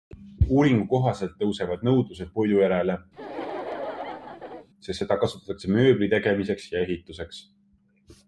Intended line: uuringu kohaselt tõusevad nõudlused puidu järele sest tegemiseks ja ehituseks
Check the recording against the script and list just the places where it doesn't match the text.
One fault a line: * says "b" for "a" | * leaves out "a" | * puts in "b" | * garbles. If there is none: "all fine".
* puts in "seda kasutatakse mööbli"